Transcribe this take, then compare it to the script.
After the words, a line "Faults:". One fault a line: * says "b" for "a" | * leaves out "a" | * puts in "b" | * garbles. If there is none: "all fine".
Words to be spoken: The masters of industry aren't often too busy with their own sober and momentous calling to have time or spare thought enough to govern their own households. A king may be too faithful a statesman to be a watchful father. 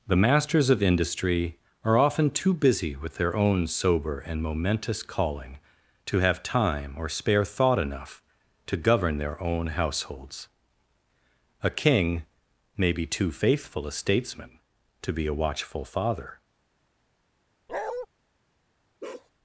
The masters of industry are often too busy with their own sober and momentous calling to have time or spare thought enough to govern their own households. A king may be too faithful a statesman to be a watchful father.
Faults:
* says "are" for "aren't"